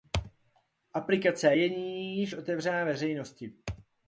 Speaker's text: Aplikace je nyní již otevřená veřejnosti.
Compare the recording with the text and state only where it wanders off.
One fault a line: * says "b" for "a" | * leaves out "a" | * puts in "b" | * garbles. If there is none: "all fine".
all fine